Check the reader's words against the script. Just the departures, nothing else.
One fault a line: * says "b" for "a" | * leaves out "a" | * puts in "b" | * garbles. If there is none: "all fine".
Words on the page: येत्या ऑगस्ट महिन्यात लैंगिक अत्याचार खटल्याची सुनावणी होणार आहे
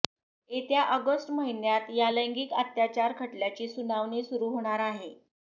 * puts in "या"
* puts in "सुरू"